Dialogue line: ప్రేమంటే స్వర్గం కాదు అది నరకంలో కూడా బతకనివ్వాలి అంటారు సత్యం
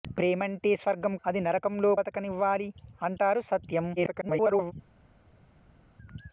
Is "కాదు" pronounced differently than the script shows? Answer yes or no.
yes